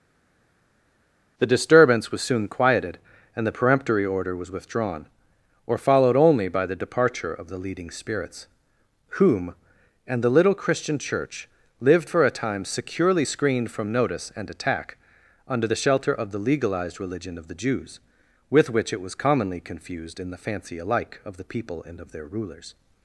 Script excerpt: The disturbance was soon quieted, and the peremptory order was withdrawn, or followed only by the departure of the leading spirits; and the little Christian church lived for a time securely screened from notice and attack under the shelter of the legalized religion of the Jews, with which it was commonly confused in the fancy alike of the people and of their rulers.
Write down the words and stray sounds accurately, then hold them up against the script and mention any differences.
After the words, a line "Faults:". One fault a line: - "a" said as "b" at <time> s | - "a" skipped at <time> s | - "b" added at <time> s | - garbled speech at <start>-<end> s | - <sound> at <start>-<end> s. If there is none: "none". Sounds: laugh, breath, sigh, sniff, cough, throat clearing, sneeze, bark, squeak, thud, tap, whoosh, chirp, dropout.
The disturbance was soon quieted, and the peremptory order was withdrawn, or followed only by the departure of the leading spirits; whom and the little Christian church lived for a time securely screened from notice and attack under the shelter of the legalized religion of the Jews, with which it was commonly confused in the fancy alike of the people and of their rulers.
Faults:
- "whom" added at 9.2 s